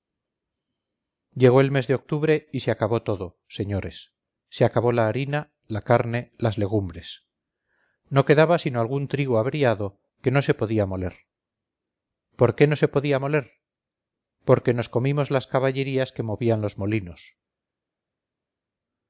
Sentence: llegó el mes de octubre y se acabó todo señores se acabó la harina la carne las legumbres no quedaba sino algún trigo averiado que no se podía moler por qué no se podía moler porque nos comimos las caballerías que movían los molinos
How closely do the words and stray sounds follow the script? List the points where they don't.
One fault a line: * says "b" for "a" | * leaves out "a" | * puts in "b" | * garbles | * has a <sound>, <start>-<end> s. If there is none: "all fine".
all fine